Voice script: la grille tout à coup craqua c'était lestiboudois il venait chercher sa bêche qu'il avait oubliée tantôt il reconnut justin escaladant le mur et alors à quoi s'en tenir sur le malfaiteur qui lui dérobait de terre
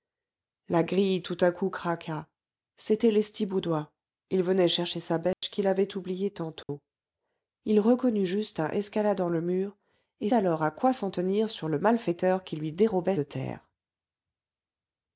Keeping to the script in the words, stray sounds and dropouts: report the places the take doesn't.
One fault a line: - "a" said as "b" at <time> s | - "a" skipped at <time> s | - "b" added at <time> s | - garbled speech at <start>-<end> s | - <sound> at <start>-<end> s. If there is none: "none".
- dropout at 5.3-5.4 s
- dropout at 6.6-6.7 s